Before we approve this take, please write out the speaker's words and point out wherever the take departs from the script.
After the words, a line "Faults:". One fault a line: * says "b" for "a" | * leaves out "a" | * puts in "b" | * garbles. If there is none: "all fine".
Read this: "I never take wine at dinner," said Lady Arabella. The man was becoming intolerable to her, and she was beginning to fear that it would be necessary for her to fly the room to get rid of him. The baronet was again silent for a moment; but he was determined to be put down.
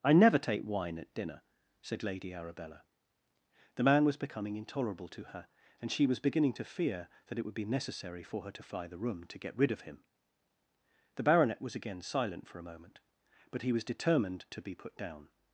"I never take wine at dinner," said Lady Arabella. The man was becoming intolerable to her, and she was beginning to fear that it would be necessary for her to fly the room to get rid of him. The baronet was again silent for a moment; but he was determined to be put down.
Faults:
all fine